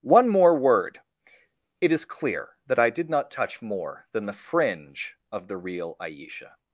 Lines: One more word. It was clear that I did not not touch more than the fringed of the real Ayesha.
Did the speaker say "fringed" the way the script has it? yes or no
no